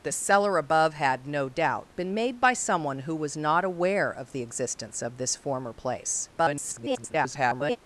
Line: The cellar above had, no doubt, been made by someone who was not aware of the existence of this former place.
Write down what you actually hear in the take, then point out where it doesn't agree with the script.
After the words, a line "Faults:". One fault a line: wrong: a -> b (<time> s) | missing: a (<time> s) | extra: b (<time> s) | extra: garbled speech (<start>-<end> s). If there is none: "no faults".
The cellar above had, no doubt, been made by someone who was not aware of the existence of this former place. [garbled]
Faults:
extra: garbled speech (6.4-7.8 s)